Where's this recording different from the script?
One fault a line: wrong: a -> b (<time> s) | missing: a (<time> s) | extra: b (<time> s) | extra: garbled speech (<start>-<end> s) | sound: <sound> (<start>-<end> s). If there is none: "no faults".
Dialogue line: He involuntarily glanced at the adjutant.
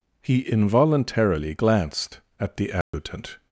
sound: dropout (2.8-2.9 s)